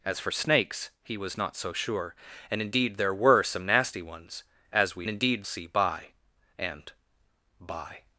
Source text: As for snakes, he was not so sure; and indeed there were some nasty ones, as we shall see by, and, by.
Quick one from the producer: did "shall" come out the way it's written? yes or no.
no